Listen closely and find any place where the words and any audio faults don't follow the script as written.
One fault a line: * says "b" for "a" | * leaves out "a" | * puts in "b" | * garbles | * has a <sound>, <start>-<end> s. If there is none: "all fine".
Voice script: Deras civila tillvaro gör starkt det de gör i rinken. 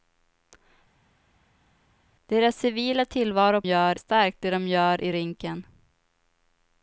all fine